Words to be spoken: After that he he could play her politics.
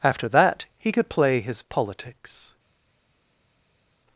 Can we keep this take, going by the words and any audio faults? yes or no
no